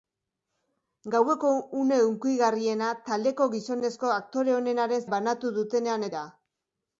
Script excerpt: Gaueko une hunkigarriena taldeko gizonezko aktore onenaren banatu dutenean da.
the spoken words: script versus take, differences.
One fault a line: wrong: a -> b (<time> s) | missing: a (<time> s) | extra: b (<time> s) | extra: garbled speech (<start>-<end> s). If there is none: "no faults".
no faults